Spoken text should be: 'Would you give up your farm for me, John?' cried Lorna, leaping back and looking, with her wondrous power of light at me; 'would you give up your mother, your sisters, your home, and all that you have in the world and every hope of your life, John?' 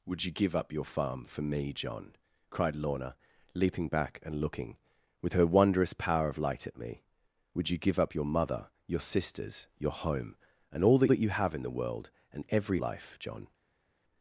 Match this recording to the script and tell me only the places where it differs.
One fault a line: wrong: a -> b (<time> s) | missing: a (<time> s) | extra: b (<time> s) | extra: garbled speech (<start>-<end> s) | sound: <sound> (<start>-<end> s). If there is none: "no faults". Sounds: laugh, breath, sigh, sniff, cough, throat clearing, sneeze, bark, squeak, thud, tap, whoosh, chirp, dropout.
extra: that (11.1 s)
missing: hope of your (12.8 s)